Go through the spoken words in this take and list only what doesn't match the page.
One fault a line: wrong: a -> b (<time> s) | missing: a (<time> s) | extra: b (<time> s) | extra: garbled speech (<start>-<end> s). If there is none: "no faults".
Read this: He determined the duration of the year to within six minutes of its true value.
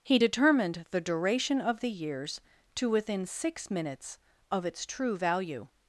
wrong: year -> years (1.9 s)